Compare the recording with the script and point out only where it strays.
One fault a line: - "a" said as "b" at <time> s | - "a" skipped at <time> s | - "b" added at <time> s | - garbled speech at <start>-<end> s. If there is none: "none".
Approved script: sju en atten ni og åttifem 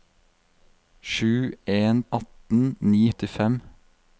none